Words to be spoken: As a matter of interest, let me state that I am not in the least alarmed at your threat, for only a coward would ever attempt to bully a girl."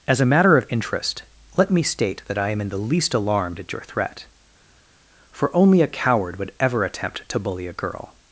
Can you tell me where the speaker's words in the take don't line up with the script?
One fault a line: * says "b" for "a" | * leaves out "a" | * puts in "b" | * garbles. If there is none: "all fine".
* leaves out "not"